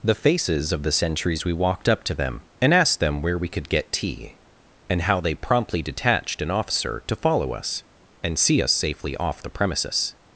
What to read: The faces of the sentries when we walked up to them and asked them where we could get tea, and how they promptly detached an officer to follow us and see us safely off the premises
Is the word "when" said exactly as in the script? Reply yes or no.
no